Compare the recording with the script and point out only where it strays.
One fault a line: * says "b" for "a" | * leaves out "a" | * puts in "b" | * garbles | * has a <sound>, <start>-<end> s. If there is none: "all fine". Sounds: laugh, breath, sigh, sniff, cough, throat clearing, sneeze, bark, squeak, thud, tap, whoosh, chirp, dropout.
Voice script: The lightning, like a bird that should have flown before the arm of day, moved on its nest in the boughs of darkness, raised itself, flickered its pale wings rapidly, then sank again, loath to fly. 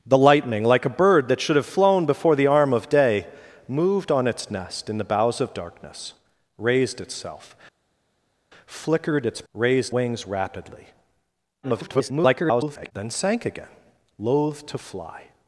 * says "raised" for "pale"
* garbles